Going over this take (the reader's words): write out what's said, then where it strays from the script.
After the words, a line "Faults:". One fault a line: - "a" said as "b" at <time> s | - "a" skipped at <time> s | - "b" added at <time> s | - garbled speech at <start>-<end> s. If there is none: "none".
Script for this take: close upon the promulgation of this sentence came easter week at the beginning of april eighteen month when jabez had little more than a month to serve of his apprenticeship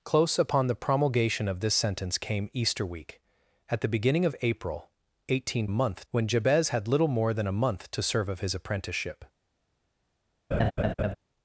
close upon the promulgation of this sentence came easter week at the beginning of april eighteen month when jabez had little more than a month to serve of his apprenticeship
Faults:
none